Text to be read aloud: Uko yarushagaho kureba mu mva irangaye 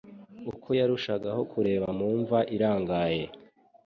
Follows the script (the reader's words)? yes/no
yes